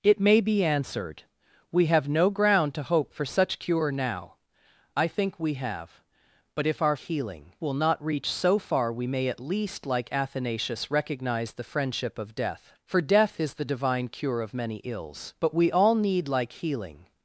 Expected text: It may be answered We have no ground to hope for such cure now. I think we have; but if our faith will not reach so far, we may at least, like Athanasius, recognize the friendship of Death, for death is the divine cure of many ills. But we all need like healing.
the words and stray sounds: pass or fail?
fail